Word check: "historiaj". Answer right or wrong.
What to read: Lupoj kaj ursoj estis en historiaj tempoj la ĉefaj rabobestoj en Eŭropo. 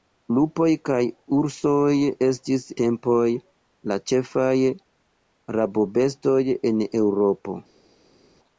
wrong